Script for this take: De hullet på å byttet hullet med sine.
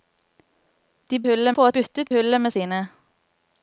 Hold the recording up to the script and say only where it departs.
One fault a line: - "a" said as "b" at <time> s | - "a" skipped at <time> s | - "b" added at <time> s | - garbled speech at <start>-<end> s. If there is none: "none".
none